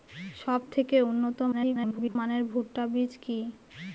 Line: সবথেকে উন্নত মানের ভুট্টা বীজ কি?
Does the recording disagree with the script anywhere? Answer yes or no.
yes